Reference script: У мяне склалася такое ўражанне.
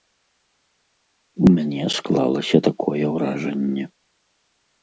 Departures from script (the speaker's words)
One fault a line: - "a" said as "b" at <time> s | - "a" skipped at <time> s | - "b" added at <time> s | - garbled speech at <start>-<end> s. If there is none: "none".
none